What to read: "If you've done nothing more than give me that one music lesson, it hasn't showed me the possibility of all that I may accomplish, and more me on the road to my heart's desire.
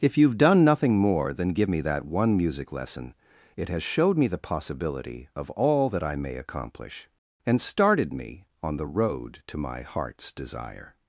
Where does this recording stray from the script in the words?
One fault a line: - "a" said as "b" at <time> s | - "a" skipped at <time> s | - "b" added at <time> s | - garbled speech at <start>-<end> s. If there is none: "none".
- "hasn't" said as "has" at 3.7 s
- "more" said as "started" at 7.6 s